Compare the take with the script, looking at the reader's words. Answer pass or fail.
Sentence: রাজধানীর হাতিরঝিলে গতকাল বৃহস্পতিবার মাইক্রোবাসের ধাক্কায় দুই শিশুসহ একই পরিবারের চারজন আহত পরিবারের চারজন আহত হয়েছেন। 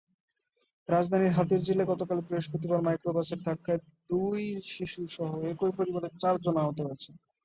fail